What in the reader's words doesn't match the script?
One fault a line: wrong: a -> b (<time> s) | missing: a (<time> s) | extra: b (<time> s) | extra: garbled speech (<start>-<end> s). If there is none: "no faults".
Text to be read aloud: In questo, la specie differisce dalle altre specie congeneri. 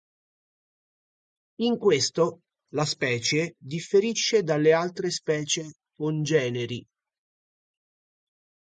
no faults